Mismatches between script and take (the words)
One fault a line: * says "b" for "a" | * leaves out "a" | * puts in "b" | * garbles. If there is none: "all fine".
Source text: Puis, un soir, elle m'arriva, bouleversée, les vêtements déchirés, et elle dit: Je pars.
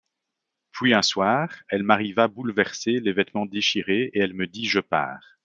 * puts in "me"